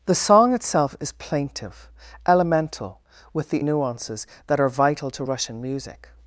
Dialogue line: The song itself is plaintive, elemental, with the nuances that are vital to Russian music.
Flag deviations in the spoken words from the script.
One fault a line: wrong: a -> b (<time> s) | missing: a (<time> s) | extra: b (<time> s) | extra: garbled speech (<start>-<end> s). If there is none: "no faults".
no faults